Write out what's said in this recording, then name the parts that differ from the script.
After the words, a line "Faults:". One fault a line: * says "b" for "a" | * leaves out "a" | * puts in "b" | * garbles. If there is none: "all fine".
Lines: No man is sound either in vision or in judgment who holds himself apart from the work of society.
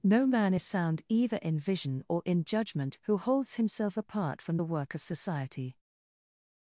No man is sound either in vision or in judgment who holds himself apart from the work of society.
Faults:
all fine